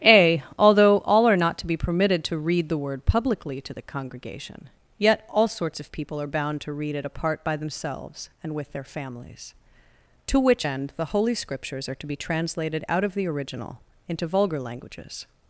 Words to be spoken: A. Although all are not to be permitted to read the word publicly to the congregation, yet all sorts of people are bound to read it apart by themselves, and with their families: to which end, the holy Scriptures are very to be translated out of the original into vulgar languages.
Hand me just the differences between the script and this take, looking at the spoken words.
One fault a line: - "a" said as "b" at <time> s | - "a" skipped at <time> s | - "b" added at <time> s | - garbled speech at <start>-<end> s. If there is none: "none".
- "very" skipped at 12.0 s